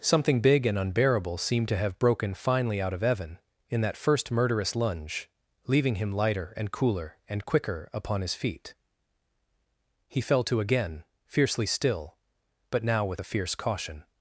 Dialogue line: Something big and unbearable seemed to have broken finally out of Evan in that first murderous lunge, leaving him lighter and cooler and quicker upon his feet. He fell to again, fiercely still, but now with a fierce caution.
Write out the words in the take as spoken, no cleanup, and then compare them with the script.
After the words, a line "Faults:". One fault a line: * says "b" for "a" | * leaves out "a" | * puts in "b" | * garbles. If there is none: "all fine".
Something big and unbearable seemed to have broken finally out of Evan in that first murderous lunge, leaving him lighter and cooler and quicker upon his feet. He fell to again, fiercely still, but now with a fierce caution.
Faults:
all fine